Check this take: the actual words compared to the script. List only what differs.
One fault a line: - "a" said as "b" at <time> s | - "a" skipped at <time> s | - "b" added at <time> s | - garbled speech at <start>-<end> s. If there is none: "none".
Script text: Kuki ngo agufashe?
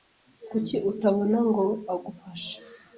- "utabona" added at 0.9 s